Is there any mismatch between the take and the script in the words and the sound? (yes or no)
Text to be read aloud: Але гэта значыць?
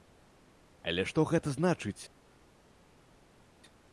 yes